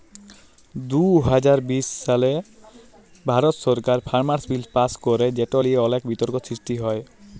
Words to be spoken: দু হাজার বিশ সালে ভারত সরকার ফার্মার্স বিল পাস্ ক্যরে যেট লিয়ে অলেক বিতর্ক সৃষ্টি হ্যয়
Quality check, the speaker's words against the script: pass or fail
pass